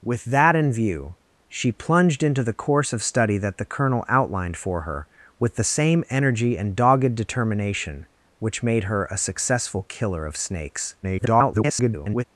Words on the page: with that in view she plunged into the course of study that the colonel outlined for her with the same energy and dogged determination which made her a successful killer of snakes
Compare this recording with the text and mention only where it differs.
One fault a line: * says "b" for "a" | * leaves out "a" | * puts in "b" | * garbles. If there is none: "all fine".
* garbles